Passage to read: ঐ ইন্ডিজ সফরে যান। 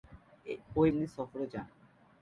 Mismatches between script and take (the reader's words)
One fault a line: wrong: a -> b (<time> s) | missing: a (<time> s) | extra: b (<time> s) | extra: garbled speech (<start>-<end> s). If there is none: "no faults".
no faults